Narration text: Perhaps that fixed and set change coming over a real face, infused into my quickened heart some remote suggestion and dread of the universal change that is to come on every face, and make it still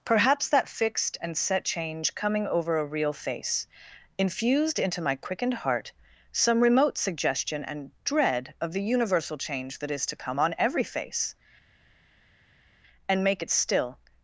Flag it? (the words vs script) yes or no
no